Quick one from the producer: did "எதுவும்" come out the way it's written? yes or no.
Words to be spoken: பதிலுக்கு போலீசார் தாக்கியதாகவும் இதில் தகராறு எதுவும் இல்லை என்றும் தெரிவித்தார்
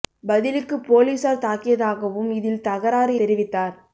no